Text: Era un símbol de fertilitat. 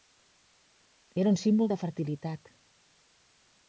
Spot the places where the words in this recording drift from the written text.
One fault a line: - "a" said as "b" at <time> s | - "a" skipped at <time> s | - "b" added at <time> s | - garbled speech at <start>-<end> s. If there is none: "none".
none